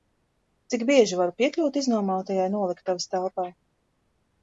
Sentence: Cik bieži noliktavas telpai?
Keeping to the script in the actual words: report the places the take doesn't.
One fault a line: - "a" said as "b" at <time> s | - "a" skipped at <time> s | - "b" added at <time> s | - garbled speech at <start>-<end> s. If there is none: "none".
- "varu piekļūt iznomātajai" added at 1.2 s